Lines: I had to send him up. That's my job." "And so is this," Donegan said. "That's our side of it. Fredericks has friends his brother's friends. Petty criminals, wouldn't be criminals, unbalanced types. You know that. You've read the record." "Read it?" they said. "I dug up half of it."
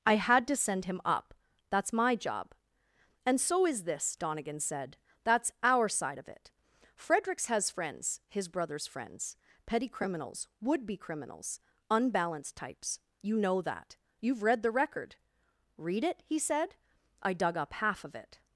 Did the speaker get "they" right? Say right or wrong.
wrong